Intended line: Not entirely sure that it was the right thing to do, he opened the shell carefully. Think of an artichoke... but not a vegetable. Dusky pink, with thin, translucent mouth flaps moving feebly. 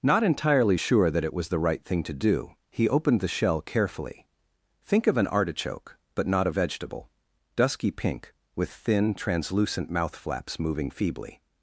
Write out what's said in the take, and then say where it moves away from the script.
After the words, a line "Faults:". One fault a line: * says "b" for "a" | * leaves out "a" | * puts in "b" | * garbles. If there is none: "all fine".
Not entirely sure that it was the right thing to do, he opened the shell carefully. Think of an artichoke... but not a vegetable. Dusky pink, with thin, translucent mouth flaps moving feebly.
Faults:
all fine